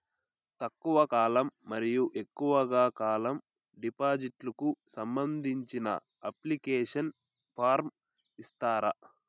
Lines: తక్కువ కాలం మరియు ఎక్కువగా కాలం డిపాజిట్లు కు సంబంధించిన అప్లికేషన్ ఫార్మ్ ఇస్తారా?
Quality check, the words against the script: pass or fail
pass